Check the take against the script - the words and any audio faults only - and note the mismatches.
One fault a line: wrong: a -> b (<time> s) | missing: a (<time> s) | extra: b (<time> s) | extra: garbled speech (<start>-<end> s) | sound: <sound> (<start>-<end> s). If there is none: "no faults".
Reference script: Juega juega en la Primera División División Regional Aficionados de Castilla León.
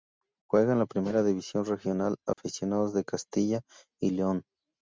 missing: juega (0.7 s)
missing: División (1.6 s)
sound: dropout (2.3-2.4 s)
extra: y (4.0 s)